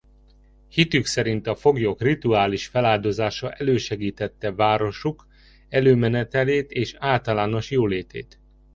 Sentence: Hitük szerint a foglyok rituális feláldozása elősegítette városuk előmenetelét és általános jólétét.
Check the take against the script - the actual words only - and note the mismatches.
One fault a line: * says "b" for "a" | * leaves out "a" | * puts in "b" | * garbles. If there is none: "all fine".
all fine